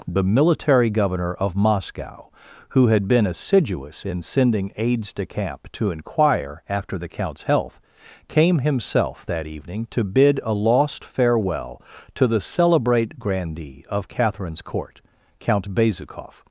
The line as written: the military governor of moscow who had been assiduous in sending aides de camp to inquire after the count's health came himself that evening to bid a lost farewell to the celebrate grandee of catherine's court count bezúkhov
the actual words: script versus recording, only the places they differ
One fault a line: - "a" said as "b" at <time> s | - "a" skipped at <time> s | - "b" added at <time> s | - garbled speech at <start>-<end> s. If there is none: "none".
none